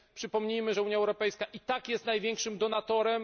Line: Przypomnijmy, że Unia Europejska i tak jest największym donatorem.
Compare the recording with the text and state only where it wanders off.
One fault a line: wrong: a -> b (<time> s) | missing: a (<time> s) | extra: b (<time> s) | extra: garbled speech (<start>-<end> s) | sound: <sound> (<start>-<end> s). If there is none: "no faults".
no faults